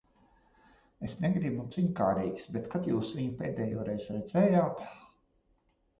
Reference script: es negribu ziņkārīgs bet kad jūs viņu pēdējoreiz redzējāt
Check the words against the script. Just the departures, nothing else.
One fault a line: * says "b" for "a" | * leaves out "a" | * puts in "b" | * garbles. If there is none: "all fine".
all fine